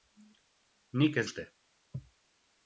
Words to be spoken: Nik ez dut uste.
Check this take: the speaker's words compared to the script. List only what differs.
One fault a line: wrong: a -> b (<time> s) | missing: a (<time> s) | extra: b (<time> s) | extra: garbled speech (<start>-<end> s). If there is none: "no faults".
missing: dut (1.3 s)